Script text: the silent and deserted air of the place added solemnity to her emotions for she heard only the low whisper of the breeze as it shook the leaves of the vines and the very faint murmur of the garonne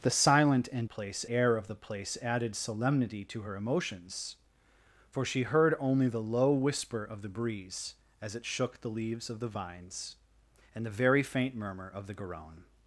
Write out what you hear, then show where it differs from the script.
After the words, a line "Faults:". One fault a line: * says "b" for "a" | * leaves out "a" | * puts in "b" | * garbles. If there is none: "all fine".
the silent and place air of the place added solemnity to her emotions for she heard only the low whisper of the breeze as it shook the leaves of the vines and the very faint murmur of the garonne
Faults:
* says "place" for "deserted"